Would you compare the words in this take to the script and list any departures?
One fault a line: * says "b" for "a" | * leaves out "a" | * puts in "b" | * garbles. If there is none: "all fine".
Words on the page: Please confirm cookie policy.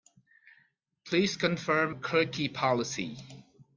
all fine